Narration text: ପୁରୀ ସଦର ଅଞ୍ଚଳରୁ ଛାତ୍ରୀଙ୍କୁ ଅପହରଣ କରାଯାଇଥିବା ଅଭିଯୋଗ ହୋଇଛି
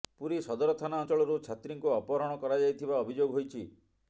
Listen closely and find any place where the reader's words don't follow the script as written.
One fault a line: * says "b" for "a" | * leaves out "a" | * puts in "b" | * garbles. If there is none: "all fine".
* puts in "ଥାନା"